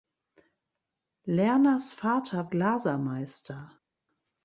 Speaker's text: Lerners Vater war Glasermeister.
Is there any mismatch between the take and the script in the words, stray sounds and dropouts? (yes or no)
yes